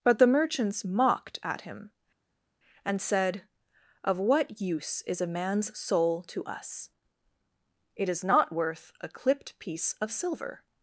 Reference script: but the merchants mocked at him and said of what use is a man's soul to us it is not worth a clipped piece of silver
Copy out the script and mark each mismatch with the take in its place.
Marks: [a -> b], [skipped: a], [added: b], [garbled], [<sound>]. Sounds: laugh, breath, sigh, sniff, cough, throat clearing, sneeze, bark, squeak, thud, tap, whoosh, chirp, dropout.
but the merchants mocked at him and said of what use is a man's soul to us it is not worth a clipped piece of silver